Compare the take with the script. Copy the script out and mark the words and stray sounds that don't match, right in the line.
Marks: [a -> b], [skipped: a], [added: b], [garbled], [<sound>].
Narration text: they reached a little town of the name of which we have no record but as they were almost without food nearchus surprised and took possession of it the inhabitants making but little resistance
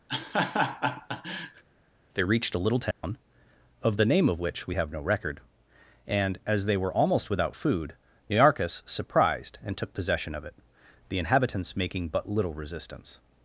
[laugh] they reached a little town [dropout] of the name of which we have no record [but -> and] as they were almost without food nearchus surprised and took possession of it the inhabitants making but little resistance